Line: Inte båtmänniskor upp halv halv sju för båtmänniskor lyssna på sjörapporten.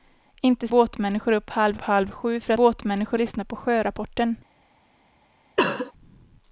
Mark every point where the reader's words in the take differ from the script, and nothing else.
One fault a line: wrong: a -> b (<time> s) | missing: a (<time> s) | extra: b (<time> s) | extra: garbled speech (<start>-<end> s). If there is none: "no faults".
no faults